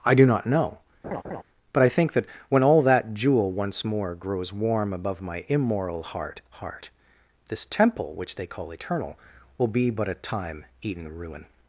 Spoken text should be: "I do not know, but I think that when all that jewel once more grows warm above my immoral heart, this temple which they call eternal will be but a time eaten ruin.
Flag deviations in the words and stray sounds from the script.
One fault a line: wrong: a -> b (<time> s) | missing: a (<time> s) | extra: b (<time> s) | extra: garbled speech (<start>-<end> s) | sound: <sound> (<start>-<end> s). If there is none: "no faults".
sound: laugh (1.0-1.4 s)
extra: heart (6.5 s)